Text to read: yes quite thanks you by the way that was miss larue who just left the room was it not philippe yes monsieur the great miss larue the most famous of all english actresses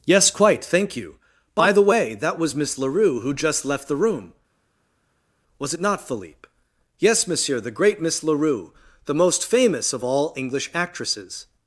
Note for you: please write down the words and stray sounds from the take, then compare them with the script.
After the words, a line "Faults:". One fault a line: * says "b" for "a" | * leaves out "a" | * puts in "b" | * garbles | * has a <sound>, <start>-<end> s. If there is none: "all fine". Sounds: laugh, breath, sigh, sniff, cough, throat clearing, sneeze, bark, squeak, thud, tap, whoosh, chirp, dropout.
yes quite thank you by the way that was miss larue who just left the room was it not philippe yes monsieur the great miss larue the most famous of all english actresses
Faults:
* says "thank" for "thanks"